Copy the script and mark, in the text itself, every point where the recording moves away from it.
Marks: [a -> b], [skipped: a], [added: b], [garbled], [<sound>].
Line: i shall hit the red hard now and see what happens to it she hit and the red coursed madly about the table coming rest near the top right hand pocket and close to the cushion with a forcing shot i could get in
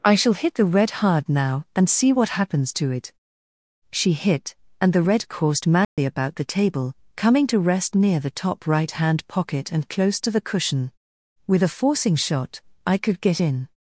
i shall hit the red hard now and see what happens to it she hit and the red coursed madly [dropout] about the table coming [added: to] rest near the top right hand pocket and close to the cushion with a forcing shot i could get in